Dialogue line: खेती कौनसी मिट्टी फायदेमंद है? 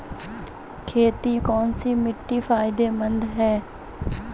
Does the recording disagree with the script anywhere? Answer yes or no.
no